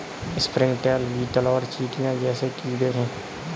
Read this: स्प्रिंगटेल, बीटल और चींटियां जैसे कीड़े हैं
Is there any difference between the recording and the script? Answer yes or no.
no